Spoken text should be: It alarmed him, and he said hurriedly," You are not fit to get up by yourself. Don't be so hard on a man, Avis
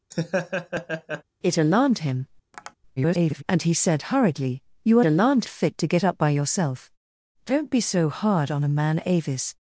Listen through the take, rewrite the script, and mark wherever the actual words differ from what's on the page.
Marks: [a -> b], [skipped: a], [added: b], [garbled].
It alarmed him, [garbled] and he said hurriedly," You are [not -> alarmed] fit to get up by yourself. Don't be so hard on a man, Avis